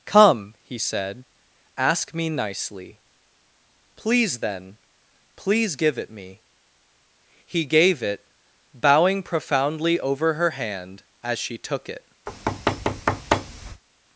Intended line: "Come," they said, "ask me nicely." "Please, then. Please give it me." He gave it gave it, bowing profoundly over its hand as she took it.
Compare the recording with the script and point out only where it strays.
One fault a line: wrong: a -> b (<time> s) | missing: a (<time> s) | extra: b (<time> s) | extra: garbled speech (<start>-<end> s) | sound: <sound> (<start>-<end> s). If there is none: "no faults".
wrong: they -> he (0.6 s)
missing: gave it (8.3 s)
wrong: its -> her (10.3 s)
sound: thud (12.3-13.8 s)